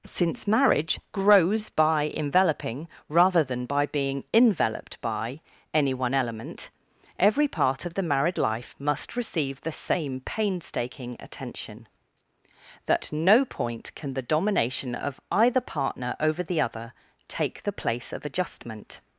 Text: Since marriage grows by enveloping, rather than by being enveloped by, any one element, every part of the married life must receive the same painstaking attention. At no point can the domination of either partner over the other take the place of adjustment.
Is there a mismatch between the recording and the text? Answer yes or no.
yes